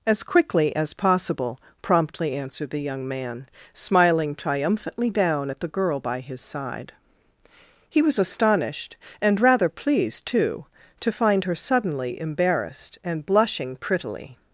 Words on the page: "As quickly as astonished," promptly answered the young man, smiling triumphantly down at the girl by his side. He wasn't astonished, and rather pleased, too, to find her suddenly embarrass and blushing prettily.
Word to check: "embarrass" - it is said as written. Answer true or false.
false